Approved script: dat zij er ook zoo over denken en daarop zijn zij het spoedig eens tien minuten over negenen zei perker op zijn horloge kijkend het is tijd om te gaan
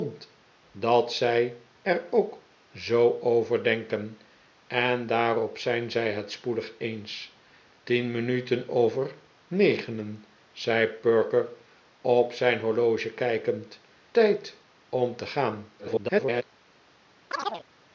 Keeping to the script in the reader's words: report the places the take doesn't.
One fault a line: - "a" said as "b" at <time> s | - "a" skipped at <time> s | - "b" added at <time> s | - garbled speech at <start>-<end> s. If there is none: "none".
- "het is" skipped at 13.8 s
- garbled speech at 15.8-16.4 s